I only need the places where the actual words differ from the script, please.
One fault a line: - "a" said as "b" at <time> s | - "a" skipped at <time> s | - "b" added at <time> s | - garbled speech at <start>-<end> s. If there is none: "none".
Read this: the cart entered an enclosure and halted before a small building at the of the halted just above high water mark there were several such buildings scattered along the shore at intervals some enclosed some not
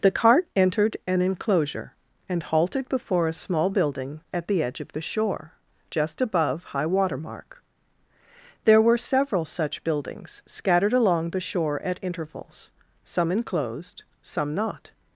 - "edge" added at 4.6 s
- "halted" said as "shore" at 5.0 s